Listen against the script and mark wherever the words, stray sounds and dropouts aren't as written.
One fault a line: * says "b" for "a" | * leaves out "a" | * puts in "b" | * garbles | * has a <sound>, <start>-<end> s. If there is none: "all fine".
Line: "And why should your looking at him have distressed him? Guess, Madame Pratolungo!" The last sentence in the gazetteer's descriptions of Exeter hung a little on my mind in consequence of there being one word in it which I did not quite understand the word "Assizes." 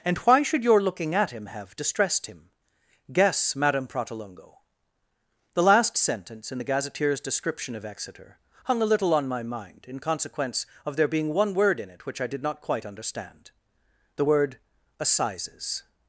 * says "description" for "descriptions"